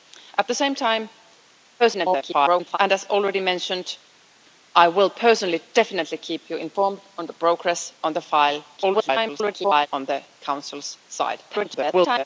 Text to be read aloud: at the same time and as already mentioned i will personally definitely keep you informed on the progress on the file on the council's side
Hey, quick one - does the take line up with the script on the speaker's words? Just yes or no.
no